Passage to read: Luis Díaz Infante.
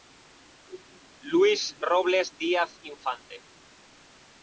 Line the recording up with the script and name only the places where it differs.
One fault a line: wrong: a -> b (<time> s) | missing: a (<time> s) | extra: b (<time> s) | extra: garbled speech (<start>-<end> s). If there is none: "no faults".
extra: Robles (1.8 s)